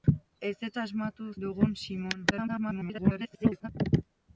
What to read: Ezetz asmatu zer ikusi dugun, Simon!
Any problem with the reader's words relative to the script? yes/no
yes